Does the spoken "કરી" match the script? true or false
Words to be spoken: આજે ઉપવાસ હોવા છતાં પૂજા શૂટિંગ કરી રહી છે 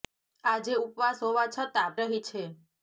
false